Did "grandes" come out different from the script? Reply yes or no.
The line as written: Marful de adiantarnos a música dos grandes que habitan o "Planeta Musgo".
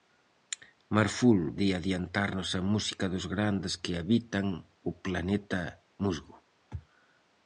no